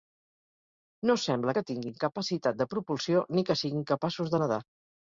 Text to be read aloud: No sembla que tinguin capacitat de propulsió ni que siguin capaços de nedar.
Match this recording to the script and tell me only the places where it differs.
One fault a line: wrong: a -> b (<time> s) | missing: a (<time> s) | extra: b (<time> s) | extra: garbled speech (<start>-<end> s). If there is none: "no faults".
no faults